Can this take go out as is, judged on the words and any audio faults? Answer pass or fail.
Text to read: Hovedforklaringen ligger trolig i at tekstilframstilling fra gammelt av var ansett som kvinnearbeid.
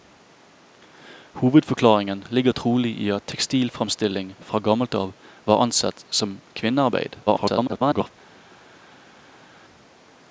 fail